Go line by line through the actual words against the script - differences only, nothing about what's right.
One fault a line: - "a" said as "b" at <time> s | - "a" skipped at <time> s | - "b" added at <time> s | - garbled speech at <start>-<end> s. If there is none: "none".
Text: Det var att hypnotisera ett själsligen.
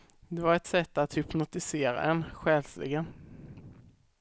- "ett sätt" added at 0.6 s
- "ett" said as "en" at 2.0 s